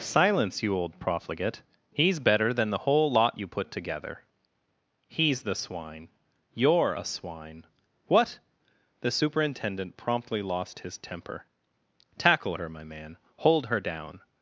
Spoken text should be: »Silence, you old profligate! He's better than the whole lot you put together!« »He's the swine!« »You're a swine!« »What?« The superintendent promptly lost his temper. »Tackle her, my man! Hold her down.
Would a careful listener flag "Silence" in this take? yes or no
no